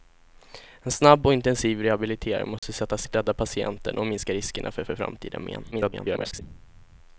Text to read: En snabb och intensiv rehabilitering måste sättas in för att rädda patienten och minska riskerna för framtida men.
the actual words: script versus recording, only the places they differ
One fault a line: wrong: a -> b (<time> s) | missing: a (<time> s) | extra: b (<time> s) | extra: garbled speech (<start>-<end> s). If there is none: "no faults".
missing: in för (3.1 s)
extra: för (4.8 s)
extra: garbled speech (5.7-6.4 s)